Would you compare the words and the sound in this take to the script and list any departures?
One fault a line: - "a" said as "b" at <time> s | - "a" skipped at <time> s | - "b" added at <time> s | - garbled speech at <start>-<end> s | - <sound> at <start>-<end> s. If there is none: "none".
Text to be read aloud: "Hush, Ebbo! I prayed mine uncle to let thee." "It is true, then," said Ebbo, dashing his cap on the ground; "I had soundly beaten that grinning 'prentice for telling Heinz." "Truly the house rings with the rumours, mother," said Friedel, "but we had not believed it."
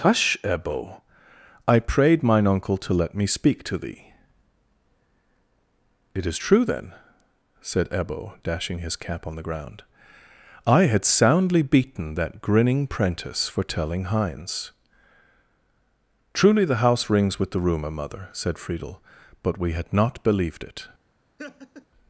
- "me speak to" added at 3.1 s
- "rumours" said as "rumour" at 17.6 s
- laugh at 21.4-21.9 s